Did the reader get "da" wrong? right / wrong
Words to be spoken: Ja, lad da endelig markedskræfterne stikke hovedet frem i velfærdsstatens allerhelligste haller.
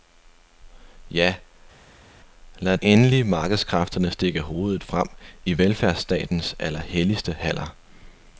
wrong